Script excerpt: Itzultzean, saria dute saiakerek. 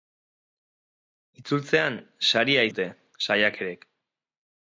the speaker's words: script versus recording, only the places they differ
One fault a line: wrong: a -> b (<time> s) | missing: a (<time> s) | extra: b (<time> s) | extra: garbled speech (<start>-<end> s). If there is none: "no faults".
no faults